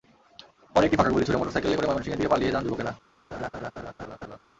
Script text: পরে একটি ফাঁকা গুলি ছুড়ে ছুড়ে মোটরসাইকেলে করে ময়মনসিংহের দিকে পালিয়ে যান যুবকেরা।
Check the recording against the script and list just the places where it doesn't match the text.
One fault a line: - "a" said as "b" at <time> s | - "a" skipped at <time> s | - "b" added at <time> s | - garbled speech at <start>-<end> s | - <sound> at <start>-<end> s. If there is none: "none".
- "ছুড়ে" skipped at 1.4 s
- laugh at 3.3-4.4 s